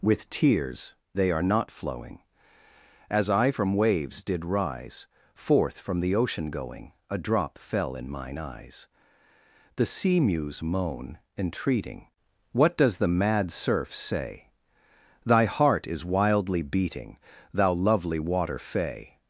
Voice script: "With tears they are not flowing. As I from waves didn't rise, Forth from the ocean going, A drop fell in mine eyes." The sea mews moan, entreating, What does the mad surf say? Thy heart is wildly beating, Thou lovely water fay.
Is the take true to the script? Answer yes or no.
no